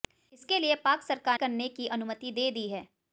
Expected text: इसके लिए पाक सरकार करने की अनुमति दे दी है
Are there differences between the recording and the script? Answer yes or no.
no